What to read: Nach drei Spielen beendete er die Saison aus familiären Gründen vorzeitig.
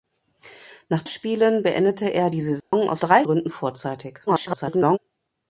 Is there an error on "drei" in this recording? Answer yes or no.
yes